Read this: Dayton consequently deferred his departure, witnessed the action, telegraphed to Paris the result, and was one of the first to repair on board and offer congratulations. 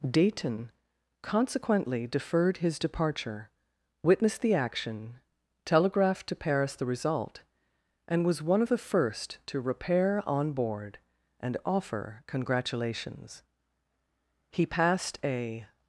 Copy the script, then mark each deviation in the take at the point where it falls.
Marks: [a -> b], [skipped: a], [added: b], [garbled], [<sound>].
Dayton consequently deferred his departure, witnessed the action, telegraphed to Paris the result, and was one of the first to repair on board and offer congratulations. [added: He passed a]